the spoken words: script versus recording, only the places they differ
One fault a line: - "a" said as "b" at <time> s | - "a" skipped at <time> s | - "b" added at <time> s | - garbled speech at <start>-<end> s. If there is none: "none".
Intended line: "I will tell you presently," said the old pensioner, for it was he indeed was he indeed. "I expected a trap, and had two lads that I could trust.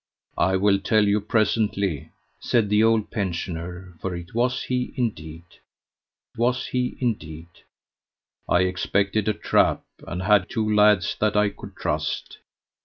none